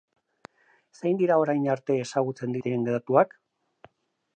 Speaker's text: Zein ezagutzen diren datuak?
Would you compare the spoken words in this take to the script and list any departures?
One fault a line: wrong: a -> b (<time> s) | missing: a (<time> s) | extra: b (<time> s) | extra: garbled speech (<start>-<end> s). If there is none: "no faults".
extra: dira orain arte (1.2 s)